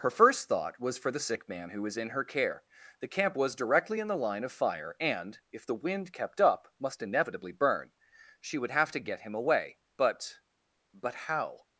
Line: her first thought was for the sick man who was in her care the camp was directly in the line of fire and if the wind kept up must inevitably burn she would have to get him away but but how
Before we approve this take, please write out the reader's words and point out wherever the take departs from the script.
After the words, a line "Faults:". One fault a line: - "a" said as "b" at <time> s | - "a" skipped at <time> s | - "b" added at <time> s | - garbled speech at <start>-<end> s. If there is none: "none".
her first thought was for the sick man who was in her care the camp was directly in the line of fire and if the wind kept up must inevitably burn she would have to get him away but but how
Faults:
none